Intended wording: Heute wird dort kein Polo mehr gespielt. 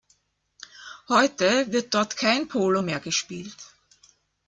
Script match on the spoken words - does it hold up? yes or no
yes